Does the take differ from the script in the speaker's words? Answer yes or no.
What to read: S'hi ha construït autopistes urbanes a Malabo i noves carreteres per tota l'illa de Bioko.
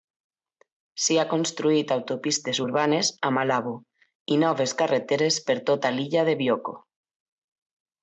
no